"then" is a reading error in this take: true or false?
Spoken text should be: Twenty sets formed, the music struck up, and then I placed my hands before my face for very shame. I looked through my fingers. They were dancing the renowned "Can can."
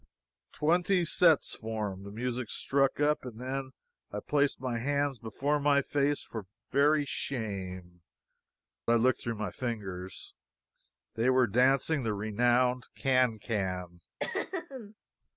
false